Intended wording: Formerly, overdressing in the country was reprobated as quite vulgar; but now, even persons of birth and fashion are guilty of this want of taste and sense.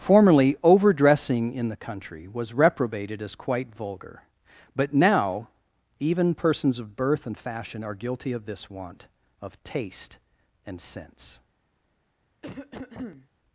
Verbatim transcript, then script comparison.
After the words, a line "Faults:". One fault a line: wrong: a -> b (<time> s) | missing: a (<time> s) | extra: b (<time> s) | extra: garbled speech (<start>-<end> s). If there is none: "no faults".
Formerly, overdressing in the country was reprobated as quite vulgar; but now, even persons of birth and fashion are guilty of this want of taste and sense.
Faults:
no faults